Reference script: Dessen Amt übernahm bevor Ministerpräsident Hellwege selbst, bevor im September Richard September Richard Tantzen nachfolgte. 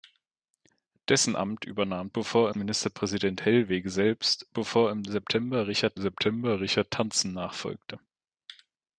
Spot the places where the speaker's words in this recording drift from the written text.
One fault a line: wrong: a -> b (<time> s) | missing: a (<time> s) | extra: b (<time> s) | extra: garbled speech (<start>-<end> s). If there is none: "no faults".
no faults